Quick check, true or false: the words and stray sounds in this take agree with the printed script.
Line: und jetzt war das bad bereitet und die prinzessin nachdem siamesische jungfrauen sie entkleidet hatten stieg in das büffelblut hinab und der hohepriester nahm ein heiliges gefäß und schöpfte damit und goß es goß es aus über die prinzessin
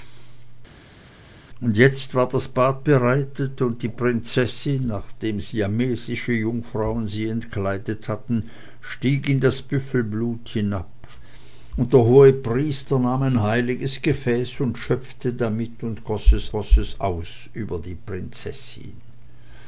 true